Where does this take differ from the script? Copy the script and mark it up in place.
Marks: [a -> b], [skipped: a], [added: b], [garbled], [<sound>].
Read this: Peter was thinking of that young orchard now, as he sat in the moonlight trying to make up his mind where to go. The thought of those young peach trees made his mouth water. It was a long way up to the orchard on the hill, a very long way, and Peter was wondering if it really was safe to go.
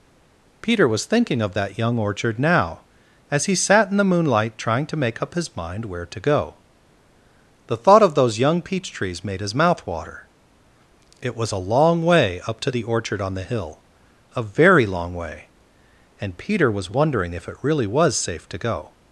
Peter was thinking of that young orchard now, as he sat in the moonlight trying to make up his mind where to go. The thought of those young peach trees made his mouth water. It was a long way up to the orchard on the hill, a very long way, and Peter was wondering if it really was safe to go.